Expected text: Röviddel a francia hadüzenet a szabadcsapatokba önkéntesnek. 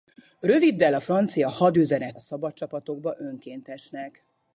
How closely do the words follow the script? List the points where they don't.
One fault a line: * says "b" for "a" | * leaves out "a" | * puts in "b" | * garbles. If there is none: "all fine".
all fine